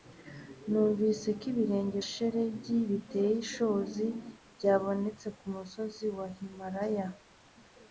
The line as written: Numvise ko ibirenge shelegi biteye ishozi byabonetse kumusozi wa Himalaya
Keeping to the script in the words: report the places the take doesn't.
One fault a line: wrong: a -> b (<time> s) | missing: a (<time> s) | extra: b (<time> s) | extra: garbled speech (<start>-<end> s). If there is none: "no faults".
no faults